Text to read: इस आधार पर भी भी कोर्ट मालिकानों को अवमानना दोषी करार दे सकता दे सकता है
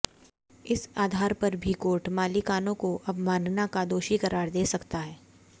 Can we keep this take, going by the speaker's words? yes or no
no